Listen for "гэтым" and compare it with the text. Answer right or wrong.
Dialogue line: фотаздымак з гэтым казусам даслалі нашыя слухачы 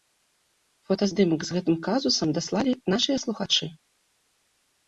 right